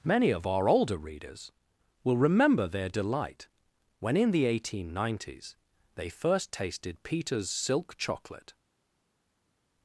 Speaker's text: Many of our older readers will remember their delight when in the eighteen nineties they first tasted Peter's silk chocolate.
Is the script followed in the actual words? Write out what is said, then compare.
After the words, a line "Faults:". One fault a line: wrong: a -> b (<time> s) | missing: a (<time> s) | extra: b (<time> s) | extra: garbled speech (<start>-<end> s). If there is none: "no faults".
Many of our older readers will remember their delight when in the eighteen nineties they first tasted Peter's silk chocolate.
Faults:
no faults